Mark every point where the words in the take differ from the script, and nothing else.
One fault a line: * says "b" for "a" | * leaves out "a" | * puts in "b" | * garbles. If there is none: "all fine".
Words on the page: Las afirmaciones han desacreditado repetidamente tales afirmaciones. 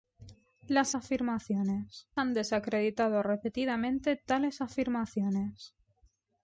all fine